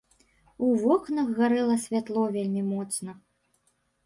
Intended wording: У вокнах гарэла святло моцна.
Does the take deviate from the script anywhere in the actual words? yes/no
yes